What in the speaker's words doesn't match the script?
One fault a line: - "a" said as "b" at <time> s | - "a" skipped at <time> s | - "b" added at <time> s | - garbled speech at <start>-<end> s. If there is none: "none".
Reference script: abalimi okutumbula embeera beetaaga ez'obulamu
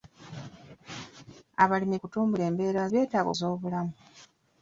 none